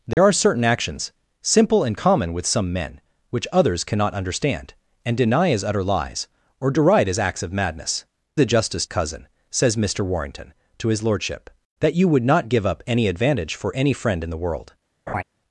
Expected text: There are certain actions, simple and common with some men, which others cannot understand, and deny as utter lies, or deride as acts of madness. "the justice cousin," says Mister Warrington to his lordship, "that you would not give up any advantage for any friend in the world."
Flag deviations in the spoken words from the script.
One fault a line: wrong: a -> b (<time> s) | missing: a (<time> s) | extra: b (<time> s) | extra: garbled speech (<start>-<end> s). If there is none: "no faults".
no faults